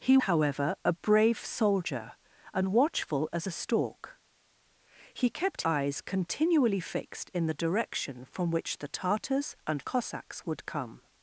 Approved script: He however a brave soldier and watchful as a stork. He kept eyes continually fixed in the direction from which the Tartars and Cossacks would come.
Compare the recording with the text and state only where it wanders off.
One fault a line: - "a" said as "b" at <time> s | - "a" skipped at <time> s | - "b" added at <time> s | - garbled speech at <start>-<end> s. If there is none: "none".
none